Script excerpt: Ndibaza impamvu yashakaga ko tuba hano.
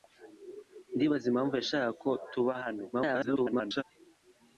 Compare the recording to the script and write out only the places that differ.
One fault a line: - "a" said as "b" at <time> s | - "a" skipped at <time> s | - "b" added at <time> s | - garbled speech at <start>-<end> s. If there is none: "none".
- garbled speech at 2.9-3.8 s